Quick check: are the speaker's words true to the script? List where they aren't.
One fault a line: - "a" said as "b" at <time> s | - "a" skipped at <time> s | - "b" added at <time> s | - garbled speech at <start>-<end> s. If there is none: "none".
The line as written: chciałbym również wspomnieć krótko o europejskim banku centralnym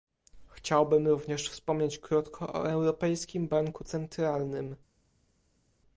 none